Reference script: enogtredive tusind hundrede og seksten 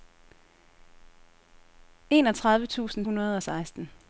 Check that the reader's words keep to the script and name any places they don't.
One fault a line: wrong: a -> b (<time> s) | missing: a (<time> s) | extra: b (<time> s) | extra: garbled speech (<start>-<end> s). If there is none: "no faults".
no faults